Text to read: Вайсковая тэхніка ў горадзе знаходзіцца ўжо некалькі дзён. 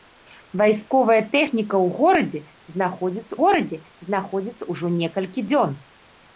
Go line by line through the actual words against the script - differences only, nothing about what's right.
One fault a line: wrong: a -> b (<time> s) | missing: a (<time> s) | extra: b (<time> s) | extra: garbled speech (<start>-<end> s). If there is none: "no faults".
extra: горадзе знаходзіцца (3.4 s)